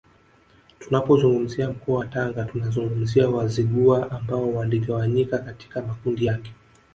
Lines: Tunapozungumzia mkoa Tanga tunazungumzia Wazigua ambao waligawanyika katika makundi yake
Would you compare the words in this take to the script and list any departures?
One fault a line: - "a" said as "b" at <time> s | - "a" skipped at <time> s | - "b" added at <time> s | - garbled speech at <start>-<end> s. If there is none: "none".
- "wa" added at 2.0 s